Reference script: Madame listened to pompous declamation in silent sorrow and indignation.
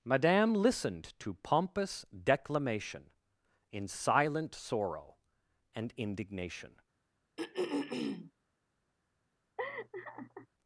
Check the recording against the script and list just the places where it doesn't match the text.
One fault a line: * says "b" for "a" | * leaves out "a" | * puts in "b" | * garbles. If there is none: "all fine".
all fine